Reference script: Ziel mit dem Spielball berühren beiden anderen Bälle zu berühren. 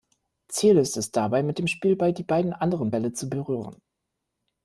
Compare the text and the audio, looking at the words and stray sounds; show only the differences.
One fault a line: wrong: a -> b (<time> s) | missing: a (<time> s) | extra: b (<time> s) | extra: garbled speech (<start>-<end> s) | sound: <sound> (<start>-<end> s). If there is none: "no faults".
extra: ist es dabei (0.8 s)
wrong: berühren -> die (2.1 s)